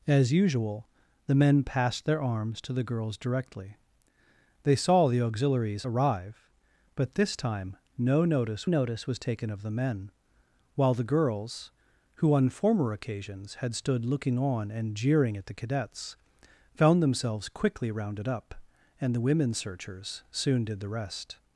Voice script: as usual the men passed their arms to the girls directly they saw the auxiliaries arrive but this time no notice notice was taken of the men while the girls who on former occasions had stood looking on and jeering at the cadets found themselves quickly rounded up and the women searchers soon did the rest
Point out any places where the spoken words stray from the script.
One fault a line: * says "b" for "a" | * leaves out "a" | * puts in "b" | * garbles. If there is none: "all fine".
all fine